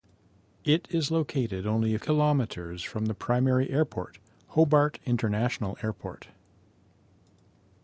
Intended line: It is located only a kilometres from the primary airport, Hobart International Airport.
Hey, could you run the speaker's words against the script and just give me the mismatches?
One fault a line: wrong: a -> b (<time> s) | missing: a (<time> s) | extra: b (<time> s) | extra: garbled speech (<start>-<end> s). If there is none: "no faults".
no faults